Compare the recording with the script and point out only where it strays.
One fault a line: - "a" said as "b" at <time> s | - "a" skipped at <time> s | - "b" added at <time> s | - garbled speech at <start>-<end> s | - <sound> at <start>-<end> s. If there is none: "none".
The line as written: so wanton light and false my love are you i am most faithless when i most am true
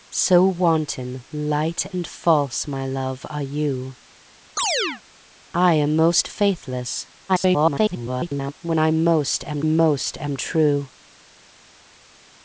- chirp at 4.6-5.0 s
- garbled speech at 7.3-8.5 s
- "most am" added at 9.6 s